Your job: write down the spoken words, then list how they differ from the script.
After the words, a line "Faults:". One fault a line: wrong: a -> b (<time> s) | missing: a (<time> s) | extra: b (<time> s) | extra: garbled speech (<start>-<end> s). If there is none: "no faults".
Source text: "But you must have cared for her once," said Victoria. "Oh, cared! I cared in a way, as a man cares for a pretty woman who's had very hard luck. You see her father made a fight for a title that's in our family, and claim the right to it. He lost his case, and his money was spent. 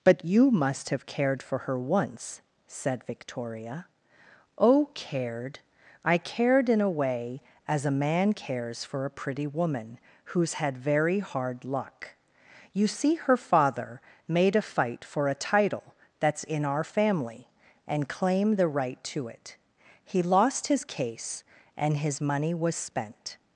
"But you must have cared for her once," said Victoria. "Oh, cared! I cared in a way, as a man cares for a pretty woman who's had very hard luck. You see her father made a fight for a title that's in our family, and claim the right to it. He lost his case, and his money was spent.
Faults:
no faults